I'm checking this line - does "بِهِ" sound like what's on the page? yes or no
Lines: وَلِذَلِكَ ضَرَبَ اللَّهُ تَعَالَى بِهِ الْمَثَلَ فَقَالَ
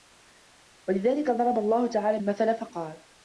no